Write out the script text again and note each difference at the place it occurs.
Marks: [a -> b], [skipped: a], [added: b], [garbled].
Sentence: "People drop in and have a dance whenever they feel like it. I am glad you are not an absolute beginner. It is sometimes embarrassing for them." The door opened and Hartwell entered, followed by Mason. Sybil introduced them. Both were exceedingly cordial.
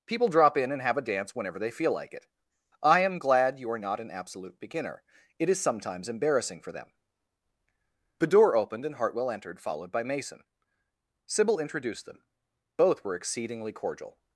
"People drop in and have a dance whenever they feel like it. I am glad you are not an absolute beginner. It is sometimes embarrassing for them." The door opened and Hartwell entered, followed by Mason. Sybil introduced them. Both were exceedingly cordial.